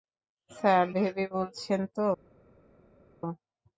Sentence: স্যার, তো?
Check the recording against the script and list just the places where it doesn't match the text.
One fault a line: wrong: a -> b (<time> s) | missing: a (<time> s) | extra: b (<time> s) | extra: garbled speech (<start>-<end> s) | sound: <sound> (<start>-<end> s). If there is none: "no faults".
extra: ভেবে বলছেন (0.9 s)